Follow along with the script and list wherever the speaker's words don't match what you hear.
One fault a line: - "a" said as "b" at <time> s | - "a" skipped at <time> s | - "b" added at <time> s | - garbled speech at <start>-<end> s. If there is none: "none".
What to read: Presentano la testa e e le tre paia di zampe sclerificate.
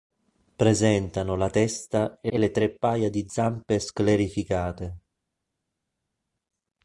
none